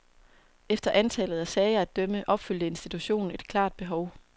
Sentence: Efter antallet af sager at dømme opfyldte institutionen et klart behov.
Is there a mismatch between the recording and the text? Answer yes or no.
no